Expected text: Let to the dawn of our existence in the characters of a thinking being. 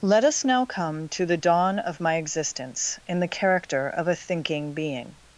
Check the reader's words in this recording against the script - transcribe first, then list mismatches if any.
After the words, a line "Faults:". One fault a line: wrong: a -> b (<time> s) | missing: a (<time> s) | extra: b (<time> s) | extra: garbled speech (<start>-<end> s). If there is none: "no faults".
Let us now come to the dawn of my existence in the character of a thinking being.
Faults:
extra: us now come (0.2 s)
wrong: our -> my (2.0 s)
wrong: characters -> character (3.3 s)